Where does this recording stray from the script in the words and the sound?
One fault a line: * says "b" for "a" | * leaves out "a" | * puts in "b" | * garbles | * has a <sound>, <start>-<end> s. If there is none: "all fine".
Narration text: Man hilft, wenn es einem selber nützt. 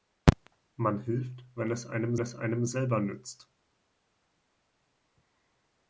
* puts in "es einem"